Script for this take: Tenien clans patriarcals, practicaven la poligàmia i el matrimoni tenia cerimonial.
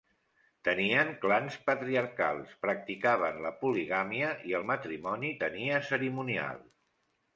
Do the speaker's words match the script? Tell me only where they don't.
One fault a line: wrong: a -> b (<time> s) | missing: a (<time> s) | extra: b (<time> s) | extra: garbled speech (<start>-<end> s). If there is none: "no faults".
no faults